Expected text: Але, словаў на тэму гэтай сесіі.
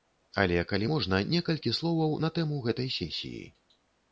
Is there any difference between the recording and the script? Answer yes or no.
yes